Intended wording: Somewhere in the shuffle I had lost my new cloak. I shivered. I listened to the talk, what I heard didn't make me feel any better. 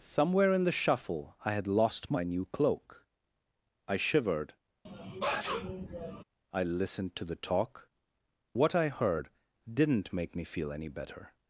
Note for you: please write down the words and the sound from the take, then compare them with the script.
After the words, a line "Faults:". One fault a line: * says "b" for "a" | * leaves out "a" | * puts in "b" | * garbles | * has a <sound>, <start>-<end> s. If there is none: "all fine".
Somewhere in the shuffle I had lost my new cloak. I shivered. I listened to the talk, what I heard didn't make me feel any better.
Faults:
* has a sneeze, 4.8-6.2 s